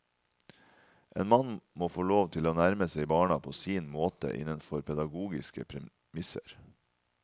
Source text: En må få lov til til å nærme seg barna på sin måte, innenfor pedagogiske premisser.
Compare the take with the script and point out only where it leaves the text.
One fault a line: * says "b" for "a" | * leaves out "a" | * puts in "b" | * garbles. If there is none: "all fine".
* puts in "mann"
* leaves out "til"